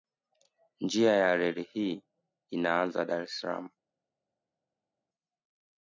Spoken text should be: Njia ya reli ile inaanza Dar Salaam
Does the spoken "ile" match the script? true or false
false